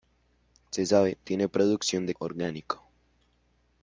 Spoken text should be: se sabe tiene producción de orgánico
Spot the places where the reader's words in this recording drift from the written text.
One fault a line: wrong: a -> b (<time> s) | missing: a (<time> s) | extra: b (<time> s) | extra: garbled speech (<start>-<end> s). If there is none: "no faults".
no faults